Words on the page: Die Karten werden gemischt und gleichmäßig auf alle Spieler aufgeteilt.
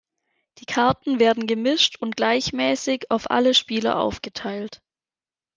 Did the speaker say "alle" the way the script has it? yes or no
yes